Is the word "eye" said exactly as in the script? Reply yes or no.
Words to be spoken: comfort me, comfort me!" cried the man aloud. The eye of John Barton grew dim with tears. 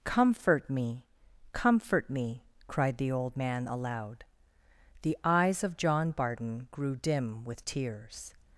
no